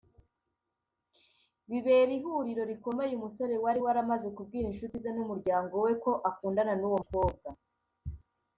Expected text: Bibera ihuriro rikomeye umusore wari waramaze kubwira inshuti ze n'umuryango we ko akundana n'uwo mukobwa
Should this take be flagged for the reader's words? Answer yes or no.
no